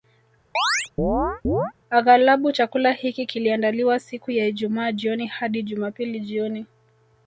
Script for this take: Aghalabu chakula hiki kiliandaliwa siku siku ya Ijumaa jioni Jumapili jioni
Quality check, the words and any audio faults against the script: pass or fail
fail